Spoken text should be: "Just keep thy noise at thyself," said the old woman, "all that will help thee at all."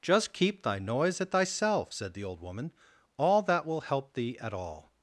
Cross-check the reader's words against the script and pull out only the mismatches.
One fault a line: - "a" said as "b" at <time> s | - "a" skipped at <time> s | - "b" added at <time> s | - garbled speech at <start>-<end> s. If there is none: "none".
none